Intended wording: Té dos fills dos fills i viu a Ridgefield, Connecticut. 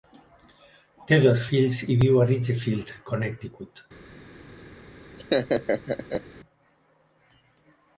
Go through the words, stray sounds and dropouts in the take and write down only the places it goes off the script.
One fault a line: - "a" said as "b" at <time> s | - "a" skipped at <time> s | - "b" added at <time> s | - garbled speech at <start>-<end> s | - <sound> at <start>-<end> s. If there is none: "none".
- "dos fills" skipped at 1.8 s
- laugh at 5.2-6.2 s